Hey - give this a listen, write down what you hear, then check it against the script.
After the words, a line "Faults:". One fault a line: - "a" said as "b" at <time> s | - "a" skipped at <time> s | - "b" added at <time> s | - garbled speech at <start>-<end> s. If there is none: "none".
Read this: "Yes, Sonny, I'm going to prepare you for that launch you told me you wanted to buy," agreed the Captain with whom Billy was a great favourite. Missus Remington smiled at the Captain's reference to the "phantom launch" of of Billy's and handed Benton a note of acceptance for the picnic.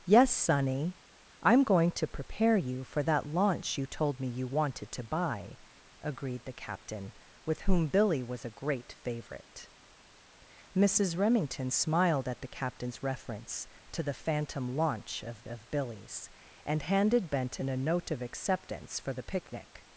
"Yes, Sonny, I'm going to prepare you for that launch you told me you wanted to buy," agreed the Captain with whom Billy was a great favourite. Missus Remington smiled at the Captain's reference to the "phantom launch" of of Billy's and handed Benton a note of acceptance for the picnic.
Faults:
none